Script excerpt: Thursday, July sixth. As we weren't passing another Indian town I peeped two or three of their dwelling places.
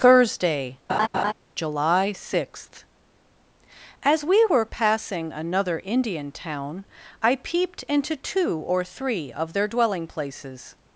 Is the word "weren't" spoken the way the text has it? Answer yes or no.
no